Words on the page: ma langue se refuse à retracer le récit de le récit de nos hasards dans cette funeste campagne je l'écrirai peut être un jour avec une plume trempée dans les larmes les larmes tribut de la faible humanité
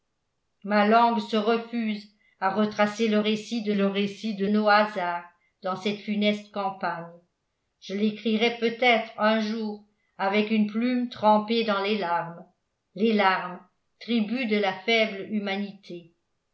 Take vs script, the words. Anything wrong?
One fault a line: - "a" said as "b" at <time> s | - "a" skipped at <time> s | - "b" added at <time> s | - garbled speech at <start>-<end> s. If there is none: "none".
none